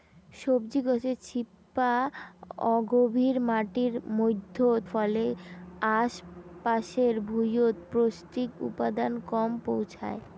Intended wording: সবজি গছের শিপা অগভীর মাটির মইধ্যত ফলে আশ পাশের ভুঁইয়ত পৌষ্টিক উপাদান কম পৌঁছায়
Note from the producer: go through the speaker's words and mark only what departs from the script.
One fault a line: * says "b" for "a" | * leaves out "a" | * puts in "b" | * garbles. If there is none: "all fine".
all fine